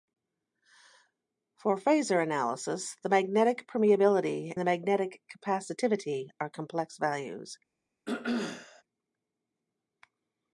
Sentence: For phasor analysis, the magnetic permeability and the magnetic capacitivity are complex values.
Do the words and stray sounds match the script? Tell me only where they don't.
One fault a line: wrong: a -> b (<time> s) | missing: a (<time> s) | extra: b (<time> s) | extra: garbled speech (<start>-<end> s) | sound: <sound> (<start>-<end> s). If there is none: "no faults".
missing: and (4.5 s)
sound: throat clearing (8.1-8.8 s)